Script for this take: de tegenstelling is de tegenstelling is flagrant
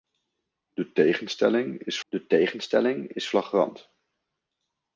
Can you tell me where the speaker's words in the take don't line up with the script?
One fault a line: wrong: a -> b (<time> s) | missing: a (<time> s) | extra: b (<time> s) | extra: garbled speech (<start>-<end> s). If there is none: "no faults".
no faults